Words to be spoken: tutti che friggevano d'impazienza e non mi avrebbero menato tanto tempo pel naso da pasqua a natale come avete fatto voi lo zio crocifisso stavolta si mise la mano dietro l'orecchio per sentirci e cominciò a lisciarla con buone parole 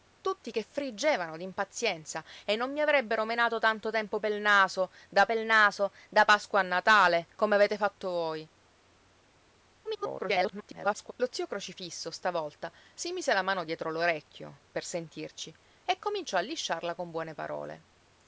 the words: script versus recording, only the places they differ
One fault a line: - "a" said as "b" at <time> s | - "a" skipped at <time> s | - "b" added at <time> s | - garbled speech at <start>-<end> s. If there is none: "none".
- "pel naso da" added at 5.3 s
- garbled speech at 9.8-11.1 s